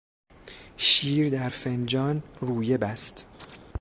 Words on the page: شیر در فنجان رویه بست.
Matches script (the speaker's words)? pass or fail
pass